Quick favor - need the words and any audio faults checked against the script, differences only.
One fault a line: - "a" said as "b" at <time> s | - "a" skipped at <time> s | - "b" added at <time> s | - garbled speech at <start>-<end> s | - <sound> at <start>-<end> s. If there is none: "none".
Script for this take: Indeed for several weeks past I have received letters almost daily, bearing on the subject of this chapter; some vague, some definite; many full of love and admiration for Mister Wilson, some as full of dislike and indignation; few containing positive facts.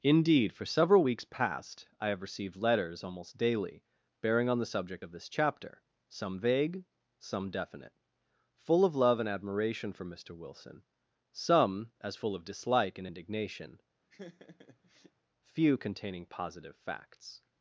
- "many" skipped at 7.9 s
- laugh at 14.1-15.1 s